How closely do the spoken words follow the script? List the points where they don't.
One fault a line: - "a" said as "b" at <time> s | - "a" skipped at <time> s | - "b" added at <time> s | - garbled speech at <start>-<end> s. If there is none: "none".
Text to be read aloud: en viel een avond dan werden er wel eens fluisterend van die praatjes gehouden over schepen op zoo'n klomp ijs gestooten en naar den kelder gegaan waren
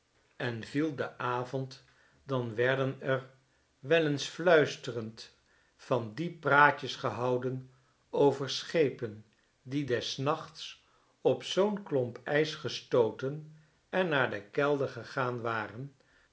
- "een" said as "de" at 0.9 s
- "die des nachts" added at 9.6 s